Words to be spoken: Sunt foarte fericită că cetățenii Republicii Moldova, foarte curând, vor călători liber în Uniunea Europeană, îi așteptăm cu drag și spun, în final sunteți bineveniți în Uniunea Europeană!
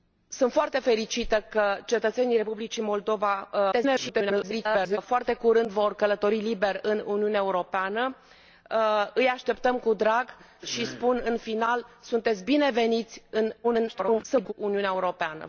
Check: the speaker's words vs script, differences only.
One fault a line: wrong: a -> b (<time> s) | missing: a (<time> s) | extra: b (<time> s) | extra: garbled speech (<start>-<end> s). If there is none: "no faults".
extra: garbled speech (3.7-5.0 s)
extra: garbled speech (13.6-14.5 s)